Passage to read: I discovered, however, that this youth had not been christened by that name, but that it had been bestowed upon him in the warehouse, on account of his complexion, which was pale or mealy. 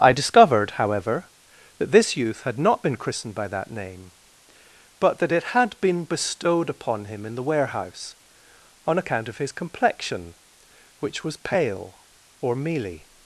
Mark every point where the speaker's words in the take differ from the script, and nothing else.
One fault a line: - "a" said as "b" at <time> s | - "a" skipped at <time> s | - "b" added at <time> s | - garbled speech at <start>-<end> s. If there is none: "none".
none